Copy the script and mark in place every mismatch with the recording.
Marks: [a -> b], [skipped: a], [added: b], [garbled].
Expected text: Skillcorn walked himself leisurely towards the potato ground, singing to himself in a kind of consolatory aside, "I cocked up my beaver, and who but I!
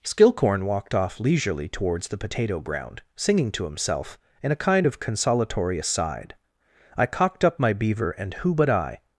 Skillcorn walked [himself -> off] leisurely towards the potato ground, singing to himself in a kind of consolatory aside, "I cocked up my beaver, and who but I!